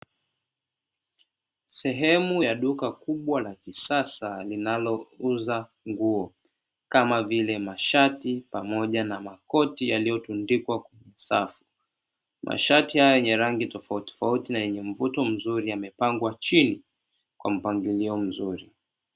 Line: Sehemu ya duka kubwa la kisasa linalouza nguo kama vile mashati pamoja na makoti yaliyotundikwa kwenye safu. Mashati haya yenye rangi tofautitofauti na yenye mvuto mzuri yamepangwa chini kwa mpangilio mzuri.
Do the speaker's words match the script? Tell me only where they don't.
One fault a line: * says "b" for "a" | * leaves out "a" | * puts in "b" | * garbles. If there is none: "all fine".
all fine